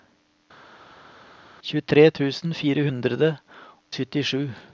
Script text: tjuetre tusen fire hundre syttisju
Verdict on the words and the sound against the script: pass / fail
pass